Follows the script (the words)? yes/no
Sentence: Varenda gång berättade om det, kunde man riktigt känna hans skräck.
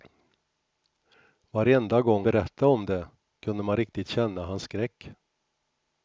yes